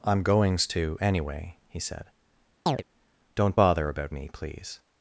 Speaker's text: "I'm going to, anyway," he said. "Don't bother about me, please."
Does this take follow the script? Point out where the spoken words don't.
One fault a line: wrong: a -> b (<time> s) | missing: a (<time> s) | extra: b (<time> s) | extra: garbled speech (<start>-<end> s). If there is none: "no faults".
wrong: going -> goings (0.2 s)